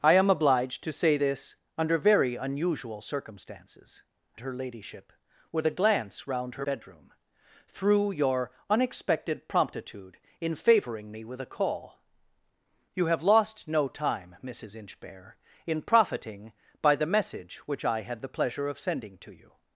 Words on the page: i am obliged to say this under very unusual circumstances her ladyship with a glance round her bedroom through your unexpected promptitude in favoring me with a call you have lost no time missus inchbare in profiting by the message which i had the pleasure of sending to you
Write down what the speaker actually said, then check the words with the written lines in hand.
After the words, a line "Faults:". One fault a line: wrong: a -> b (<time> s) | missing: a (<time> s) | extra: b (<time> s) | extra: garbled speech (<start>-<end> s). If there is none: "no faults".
i am obliged to say this under very unusual circumstances her ladyship with a glance round her bedroom through your unexpected promptitude in favoring me with a call you have lost no time missus inchbare in profiting by the message which i had the pleasure of sending to you
Faults:
no faults